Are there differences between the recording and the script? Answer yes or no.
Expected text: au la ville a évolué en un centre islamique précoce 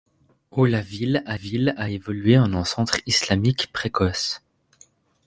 yes